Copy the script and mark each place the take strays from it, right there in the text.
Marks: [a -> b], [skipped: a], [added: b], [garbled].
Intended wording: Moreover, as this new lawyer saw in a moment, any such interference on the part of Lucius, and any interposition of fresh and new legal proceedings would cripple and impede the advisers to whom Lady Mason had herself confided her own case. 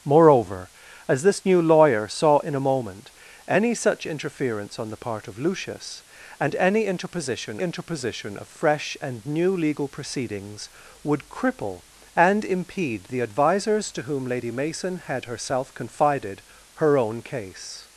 Moreover, as this new lawyer saw in a moment, any such interference on the part of Lucius, and any interposition [added: interposition] of fresh and new legal proceedings would cripple and impede the advisers to whom Lady Mason had herself confided her own case.